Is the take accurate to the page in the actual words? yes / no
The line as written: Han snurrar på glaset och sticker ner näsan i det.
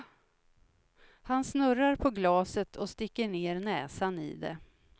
yes